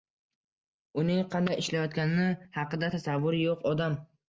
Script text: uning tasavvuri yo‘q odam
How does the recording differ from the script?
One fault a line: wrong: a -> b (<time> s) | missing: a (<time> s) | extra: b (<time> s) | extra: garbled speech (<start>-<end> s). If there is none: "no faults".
extra: qanday ishlayotgani haqida (1.4 s)